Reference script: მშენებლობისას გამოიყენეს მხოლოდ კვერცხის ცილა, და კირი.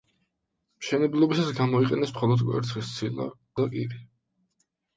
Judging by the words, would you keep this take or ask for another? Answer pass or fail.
pass